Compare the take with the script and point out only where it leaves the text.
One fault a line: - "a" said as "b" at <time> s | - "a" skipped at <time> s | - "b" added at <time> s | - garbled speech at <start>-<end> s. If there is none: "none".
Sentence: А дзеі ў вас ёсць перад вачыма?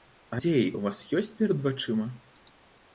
none